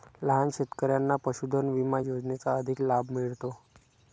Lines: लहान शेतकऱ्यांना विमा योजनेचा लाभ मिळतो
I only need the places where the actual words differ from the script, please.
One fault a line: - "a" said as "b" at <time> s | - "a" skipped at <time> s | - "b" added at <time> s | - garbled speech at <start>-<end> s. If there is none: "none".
- "पशुधन" added at 1.2 s
- "अधिक" added at 2.6 s